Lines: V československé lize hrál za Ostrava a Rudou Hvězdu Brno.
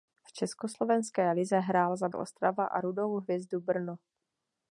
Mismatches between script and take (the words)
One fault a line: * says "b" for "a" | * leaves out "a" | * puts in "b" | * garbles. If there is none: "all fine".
all fine